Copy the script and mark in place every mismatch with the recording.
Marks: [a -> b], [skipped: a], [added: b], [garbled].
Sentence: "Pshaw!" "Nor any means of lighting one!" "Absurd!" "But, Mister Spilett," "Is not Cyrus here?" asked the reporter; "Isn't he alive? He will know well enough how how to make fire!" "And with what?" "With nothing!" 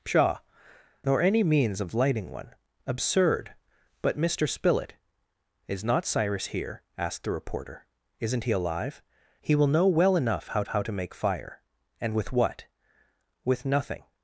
"Pshaw!" "Nor any means of lighting one!" "Absurd!" "But, Mister Spilett," "Is not Cyrus here?" asked the reporter; "Isn't he alive? He will know well enough how how to make fire!" "And with what?" "With nothing!"